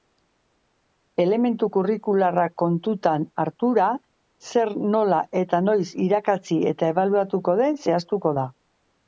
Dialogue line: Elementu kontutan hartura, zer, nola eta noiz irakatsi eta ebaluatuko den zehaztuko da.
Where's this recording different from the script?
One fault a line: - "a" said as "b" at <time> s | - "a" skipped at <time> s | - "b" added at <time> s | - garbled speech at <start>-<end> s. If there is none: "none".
- "kurrikularrak" added at 1.8 s